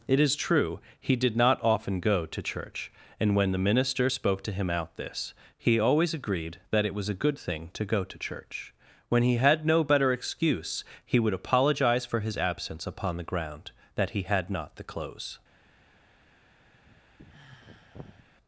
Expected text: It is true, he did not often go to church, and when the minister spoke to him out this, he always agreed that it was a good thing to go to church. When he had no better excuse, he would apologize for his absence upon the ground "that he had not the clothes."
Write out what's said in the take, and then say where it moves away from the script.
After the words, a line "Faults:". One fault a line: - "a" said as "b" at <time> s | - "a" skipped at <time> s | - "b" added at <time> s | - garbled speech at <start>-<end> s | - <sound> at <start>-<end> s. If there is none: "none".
It is true, he did not often go to church, and when the minister spoke to him out this, he always agreed that it was a good thing to go to church. When he had no better excuse, he would apologize for his absence upon the ground "that he had not the clothes."
Faults:
- sigh at 16.7-18.3 s